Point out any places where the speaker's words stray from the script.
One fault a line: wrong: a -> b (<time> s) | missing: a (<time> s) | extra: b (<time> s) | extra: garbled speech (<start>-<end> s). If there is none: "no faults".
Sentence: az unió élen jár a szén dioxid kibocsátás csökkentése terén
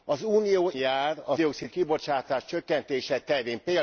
missing: élen (0.7 s)
missing: szén (1.4 s)